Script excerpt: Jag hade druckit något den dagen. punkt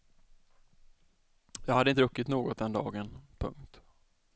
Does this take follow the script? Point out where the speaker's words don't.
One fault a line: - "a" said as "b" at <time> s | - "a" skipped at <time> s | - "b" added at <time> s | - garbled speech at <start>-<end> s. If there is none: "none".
none